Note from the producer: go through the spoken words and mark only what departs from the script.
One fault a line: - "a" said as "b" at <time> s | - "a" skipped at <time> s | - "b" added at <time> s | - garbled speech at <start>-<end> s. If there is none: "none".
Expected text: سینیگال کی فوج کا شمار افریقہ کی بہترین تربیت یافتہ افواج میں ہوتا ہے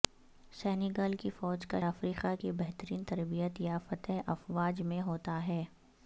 - "شمار" skipped at 1.8 s